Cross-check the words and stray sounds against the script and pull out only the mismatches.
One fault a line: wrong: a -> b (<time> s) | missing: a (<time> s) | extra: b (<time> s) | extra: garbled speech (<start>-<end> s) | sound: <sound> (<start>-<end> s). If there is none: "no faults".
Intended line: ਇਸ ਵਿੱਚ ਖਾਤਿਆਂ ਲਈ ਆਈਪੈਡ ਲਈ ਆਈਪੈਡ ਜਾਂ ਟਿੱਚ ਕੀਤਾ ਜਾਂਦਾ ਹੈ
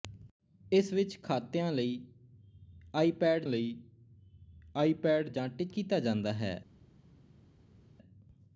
no faults